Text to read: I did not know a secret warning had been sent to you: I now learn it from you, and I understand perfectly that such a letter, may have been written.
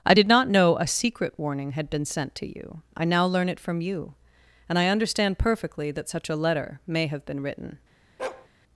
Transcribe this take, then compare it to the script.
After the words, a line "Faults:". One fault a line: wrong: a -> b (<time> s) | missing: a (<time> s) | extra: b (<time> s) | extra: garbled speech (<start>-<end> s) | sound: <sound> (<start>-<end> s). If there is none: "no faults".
I did not know a secret warning had been sent to you: I now learn it from you, and I understand perfectly that such a letter, may have been written.
Faults:
sound: bark (8.2-8.5 s)